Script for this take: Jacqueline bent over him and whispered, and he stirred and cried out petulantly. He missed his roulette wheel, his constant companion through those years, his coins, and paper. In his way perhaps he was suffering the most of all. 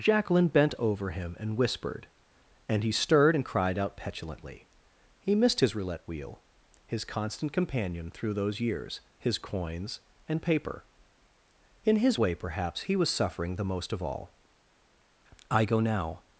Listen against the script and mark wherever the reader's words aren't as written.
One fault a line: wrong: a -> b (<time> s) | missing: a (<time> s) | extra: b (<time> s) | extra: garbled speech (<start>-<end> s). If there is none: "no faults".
extra: I go now (15.5 s)